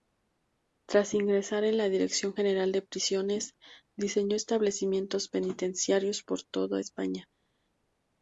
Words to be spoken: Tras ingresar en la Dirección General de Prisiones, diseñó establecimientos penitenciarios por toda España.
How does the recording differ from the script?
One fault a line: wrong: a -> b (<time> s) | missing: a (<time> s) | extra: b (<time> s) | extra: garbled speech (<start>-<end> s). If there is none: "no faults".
no faults